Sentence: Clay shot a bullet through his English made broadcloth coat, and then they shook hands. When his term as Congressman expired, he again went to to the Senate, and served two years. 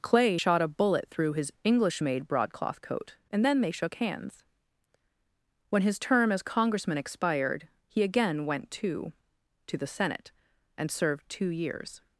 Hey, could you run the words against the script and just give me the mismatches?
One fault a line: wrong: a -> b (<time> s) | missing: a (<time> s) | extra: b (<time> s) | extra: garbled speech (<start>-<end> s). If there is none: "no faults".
no faults